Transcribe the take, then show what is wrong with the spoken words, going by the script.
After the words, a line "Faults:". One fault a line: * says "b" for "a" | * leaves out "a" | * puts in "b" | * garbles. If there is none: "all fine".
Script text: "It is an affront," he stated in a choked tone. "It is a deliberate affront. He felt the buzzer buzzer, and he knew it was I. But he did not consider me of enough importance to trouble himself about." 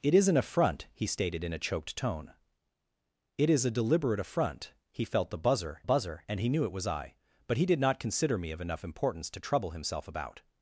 "It is an affront," he stated in a choked tone. "It is a deliberate affront. He felt the buzzer buzzer, and he knew it was I. But he did not consider me of enough importance to trouble himself about."
Faults:
all fine